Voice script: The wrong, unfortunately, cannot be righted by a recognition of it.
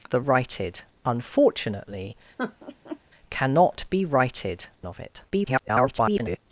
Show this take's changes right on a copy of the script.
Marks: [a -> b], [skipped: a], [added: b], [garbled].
The [wrong, -> righted] unfortunately, cannot be righted [skipped: by a recognition] of it. [garbled]